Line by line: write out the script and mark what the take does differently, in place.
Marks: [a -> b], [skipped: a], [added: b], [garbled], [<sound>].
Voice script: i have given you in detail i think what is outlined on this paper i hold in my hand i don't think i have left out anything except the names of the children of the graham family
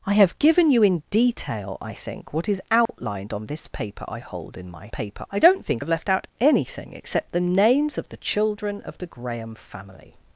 i have given you in detail i think what is outlined [dropout] on this paper i hold in my [hand -> paper] i don't think [skipped: i] have left out anything except the names of the children of the graham family